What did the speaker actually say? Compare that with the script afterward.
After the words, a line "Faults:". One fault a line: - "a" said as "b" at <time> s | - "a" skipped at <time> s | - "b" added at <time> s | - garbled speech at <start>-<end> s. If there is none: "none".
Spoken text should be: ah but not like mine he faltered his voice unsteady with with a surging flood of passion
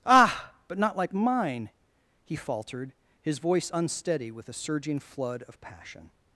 ah but not like mine he faltered his voice unsteady with a surging flood of passion
Faults:
- "with" skipped at 4.5 s